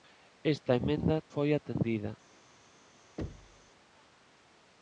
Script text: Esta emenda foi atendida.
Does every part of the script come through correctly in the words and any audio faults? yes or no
no